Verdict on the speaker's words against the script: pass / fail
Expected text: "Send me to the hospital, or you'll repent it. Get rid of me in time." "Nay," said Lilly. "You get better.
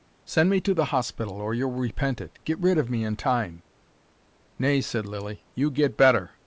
pass